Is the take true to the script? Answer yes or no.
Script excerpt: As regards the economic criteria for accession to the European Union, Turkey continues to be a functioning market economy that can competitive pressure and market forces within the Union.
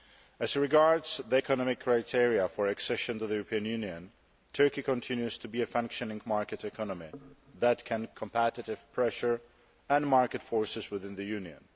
yes